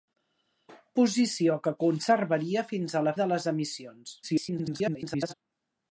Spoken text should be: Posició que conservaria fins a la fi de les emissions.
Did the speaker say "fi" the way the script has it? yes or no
no